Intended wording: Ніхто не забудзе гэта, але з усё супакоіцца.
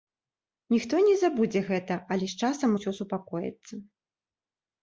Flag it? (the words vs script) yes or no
yes